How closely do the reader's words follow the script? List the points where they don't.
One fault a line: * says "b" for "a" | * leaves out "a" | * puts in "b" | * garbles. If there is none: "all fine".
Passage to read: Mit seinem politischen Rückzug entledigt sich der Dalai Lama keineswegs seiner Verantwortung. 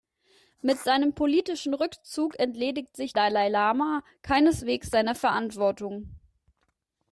* leaves out "der"